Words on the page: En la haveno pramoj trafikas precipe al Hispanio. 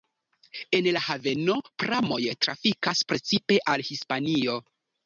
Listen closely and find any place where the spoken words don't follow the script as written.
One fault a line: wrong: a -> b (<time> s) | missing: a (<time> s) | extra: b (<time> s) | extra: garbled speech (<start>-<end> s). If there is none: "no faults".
no faults